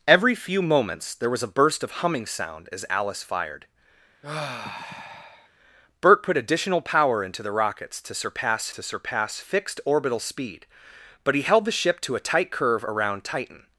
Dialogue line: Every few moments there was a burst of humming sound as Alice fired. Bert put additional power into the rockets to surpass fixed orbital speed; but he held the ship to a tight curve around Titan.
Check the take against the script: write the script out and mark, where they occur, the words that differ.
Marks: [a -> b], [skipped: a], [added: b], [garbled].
Every few moments there was a burst of humming sound as Alice fired. Bert put additional power into the rockets to surpass [added: to surpass] fixed orbital speed; but he held the ship to a tight curve around Titan.